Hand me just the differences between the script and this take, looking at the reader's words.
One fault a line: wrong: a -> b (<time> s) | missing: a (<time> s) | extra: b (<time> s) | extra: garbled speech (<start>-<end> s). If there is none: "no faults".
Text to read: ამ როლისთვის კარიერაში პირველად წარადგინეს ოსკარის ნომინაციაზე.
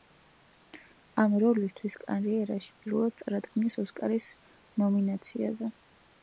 no faults